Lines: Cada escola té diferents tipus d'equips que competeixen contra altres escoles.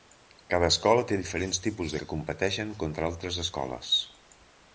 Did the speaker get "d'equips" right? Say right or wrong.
wrong